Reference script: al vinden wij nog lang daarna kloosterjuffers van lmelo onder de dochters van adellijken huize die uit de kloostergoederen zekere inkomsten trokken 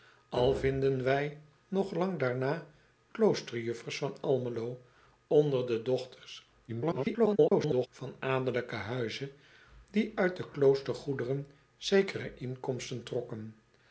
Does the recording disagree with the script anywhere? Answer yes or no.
yes